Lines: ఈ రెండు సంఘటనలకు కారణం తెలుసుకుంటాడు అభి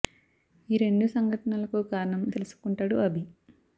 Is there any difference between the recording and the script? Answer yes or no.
no